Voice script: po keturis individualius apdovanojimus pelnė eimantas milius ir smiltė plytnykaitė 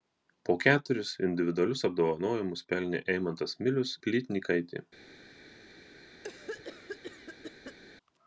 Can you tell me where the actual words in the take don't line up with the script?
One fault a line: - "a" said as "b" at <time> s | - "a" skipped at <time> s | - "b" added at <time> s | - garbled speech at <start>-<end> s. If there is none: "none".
- "ir smiltė" skipped at 3.9 s